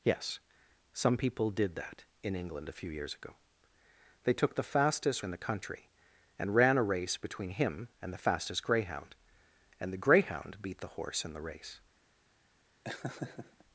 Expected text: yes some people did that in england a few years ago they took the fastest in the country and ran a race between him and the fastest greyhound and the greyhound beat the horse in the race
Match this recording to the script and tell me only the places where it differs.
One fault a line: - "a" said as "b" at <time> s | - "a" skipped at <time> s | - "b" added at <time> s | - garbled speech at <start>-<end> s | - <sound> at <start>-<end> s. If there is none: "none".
- laugh at 12.8-13.6 s